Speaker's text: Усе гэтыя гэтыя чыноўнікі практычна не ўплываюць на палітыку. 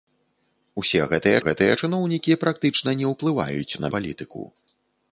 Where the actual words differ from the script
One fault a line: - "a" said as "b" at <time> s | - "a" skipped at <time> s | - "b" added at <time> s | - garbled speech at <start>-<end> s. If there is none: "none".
none